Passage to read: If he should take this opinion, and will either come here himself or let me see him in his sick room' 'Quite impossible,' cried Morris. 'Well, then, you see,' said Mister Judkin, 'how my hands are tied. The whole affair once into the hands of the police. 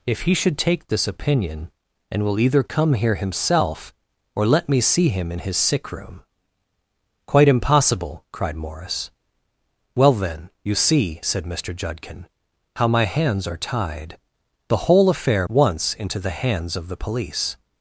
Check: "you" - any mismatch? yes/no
no